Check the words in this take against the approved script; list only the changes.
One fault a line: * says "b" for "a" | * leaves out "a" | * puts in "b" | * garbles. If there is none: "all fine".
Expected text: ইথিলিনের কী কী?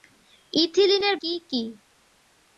all fine